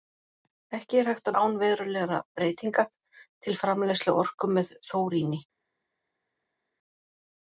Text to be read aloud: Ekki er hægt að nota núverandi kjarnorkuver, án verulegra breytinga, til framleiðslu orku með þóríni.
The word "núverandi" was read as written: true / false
false